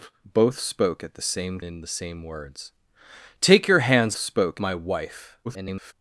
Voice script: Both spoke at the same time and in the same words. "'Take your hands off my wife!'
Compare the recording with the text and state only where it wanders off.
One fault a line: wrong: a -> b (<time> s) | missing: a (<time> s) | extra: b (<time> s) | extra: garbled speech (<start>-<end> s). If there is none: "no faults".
missing: time and (1.6 s)
wrong: off -> spoke (4.2 s)
extra: garbled speech (5.4-5.9 s)